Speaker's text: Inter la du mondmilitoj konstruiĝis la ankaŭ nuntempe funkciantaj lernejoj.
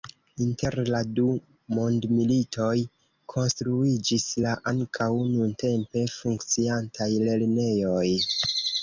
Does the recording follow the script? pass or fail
pass